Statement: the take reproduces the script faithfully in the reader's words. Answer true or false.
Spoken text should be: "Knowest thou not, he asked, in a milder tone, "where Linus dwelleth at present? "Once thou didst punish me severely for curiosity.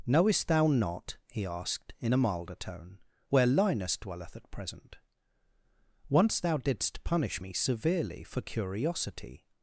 true